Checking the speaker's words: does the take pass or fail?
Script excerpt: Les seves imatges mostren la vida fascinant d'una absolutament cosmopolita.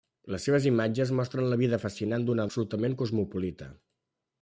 pass